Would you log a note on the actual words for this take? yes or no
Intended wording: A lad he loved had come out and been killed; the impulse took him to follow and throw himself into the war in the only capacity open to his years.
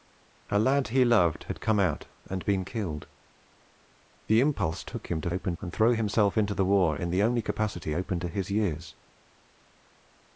yes